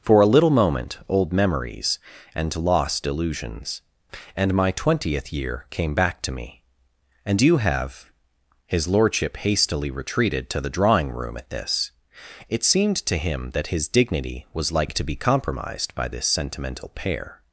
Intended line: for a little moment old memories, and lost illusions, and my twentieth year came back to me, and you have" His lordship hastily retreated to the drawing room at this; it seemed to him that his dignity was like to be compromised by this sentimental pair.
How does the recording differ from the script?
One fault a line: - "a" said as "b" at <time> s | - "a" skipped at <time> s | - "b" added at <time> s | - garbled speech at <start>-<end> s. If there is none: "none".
none